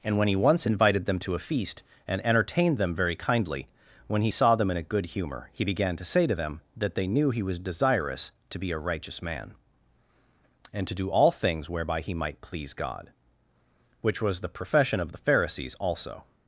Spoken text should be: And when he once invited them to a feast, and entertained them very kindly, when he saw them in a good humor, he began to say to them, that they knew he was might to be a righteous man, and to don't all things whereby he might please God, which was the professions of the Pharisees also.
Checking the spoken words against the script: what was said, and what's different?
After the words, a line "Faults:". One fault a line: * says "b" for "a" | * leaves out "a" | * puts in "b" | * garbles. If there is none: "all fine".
And when he once invited them to a feast, and entertained them very kindly, when he saw them in a good humor, he began to say to them, that they knew he was desirous to be a righteous man, and to do all things whereby he might please God, which was the profession of the Pharisees also.
Faults:
* says "desirous" for "might"
* says "do" for "don't"
* says "profession" for "professions"